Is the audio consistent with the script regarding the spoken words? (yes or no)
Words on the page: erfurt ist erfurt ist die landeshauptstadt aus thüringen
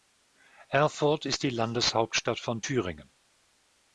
no